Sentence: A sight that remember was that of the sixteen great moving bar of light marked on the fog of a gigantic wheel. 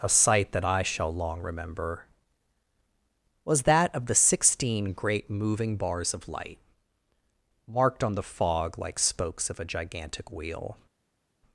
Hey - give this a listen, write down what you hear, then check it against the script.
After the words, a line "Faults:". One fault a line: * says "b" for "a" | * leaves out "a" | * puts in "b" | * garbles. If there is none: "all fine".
A sight that I shall long remember was that of the sixteen great moving bars of light marked on the fog like spokes of a gigantic wheel.
Faults:
* puts in "I shall long"
* says "bars" for "bar"
* puts in "like spokes"